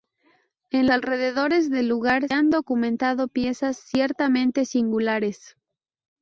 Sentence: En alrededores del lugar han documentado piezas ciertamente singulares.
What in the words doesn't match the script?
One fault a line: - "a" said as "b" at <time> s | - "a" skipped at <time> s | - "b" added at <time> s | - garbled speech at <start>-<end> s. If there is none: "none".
none